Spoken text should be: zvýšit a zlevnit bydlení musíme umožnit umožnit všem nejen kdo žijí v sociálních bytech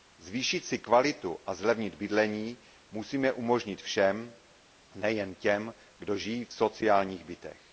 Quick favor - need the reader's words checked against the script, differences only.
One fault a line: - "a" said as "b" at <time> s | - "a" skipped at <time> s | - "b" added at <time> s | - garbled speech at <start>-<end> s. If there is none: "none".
- "si kvalitu" added at 0.7 s
- "umožnit" skipped at 3.8 s
- "těm" added at 5.3 s